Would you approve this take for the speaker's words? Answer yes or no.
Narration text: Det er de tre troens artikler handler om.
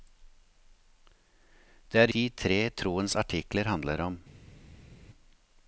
yes